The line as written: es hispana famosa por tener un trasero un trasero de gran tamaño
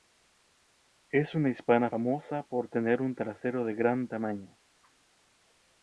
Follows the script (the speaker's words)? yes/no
no